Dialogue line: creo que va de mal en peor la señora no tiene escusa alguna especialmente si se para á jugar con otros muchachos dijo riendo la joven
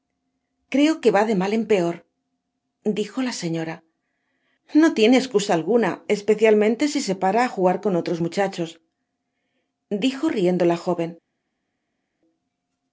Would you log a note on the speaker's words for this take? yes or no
yes